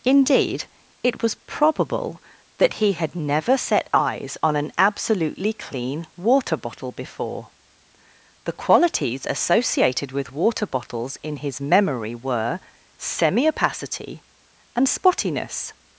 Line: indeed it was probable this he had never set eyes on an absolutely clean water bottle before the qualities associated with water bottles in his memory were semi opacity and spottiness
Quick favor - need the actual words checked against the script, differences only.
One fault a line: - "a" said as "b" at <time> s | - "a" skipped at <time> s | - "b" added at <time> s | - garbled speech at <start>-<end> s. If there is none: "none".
- "this" said as "that" at 2.6 s